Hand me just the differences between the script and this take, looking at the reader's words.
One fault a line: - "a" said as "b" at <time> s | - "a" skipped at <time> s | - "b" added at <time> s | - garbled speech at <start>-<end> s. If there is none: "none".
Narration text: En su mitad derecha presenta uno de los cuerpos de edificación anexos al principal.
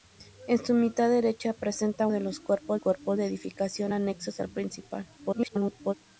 - "uno" skipped at 2.1 s
- "cuerpos" added at 2.8 s
- garbled speech at 5.2-5.9 s